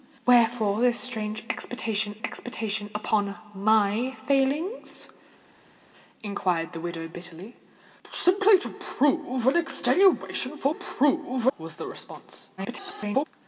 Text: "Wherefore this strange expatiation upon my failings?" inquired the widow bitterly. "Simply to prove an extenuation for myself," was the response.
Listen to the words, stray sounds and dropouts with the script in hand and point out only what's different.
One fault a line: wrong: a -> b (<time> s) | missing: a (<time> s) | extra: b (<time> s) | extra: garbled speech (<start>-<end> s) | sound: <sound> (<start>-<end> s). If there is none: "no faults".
extra: expatiation (2.2 s)
wrong: myself -> prove (10.7 s)
extra: garbled speech (12.6-13.3 s)